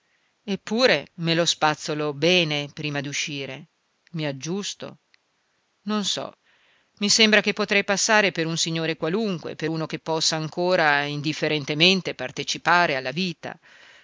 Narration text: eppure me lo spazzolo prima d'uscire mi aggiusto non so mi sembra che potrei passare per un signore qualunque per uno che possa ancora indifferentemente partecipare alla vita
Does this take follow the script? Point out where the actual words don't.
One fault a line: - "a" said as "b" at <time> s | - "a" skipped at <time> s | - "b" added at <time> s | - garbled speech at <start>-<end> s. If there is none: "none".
- "bene" added at 2.1 s